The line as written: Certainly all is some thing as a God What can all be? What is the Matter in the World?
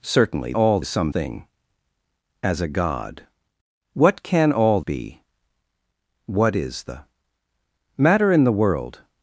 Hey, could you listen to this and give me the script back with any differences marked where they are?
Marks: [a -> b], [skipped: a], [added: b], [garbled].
Certainly all is some thing as a God What can all be? What is the Matter in the World?